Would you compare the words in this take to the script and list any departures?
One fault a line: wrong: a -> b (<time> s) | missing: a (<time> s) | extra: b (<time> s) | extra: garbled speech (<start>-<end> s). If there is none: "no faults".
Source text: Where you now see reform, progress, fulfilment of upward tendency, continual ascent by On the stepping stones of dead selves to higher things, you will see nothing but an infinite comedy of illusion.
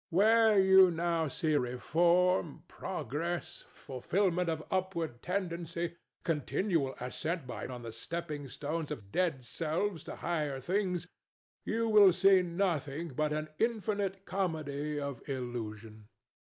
no faults